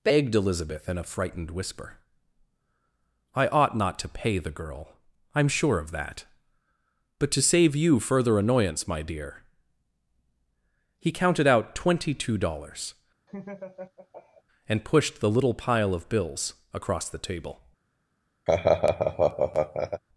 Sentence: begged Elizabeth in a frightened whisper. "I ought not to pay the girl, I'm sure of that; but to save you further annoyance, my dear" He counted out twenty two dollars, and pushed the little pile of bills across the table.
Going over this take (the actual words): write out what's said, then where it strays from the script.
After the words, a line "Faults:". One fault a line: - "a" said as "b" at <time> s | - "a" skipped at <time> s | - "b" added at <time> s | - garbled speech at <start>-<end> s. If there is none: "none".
begged Elizabeth in a frightened whisper. "I ought not to pay the girl, I'm sure of that; but to save you further annoyance, my dear" He counted out twenty two dollars, and pushed the little pile of bills across the table.
Faults:
none